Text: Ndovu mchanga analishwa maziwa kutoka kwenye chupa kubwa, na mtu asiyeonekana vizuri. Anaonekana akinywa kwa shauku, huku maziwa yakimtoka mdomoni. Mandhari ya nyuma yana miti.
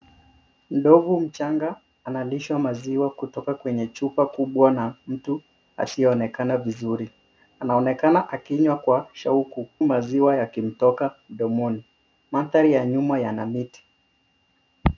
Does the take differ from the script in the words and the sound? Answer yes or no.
yes